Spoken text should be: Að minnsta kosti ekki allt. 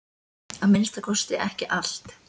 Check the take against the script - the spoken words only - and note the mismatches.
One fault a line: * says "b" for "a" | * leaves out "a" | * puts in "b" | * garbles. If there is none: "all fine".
all fine